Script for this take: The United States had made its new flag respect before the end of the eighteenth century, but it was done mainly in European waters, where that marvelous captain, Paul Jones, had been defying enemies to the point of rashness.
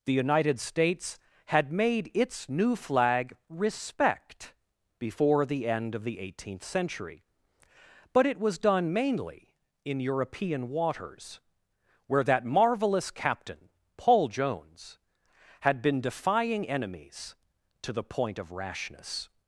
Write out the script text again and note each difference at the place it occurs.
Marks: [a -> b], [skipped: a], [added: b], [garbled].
The United States had made its new flag respect before the end of the eighteenth century, but it was done mainly in European waters, where that marvelous captain, Paul Jones, had been defying enemies to the point of rashness.